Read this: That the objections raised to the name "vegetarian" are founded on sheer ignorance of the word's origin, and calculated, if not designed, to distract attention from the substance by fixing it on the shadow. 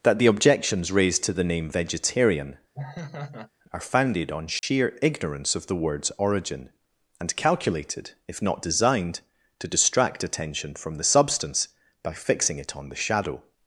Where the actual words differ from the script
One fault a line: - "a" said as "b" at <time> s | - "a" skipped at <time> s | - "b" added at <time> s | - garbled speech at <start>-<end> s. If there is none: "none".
none